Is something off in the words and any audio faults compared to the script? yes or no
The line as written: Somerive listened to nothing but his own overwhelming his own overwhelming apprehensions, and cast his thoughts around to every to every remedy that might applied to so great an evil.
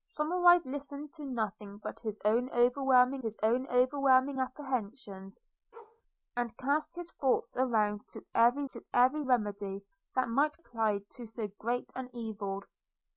yes